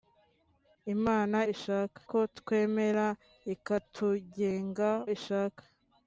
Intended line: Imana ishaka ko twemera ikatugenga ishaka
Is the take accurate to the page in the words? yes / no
yes